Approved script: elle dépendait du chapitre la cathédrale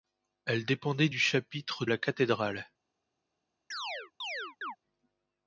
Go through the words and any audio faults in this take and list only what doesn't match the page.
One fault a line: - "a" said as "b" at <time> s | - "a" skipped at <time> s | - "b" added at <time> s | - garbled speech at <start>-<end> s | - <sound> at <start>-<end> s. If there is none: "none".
- chirp at 3.7-4.8 s